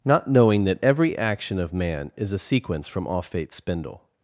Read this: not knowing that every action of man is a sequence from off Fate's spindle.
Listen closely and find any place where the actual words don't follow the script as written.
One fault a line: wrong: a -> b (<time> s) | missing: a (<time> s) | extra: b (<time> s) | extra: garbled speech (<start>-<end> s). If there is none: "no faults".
no faults